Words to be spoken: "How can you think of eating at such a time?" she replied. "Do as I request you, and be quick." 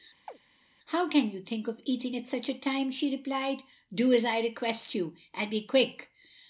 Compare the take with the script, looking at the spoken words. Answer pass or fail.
pass